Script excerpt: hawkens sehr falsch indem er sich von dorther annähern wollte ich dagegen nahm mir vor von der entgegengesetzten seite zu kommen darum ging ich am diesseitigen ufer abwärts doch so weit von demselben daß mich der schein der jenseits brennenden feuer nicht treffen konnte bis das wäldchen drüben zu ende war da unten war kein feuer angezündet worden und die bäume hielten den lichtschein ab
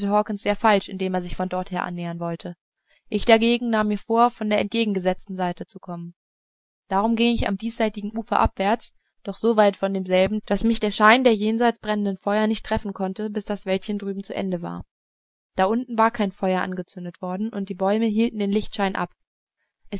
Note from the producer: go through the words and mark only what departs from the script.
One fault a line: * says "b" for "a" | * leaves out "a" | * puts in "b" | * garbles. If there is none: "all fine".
all fine